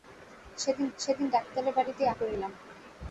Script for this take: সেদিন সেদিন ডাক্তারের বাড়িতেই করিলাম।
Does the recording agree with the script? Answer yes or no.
yes